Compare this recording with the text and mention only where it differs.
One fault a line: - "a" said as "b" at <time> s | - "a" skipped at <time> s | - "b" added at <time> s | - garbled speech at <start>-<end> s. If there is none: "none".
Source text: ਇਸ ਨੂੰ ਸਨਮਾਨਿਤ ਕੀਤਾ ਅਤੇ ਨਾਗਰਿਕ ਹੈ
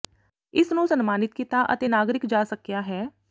- "ਜਾ ਸਕਿਆ" added at 2.3 s